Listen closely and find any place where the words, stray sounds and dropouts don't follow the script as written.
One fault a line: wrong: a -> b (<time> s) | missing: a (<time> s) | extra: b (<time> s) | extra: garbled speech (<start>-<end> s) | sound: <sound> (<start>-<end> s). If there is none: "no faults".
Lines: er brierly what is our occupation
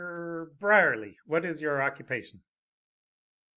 wrong: our -> your (1.6 s)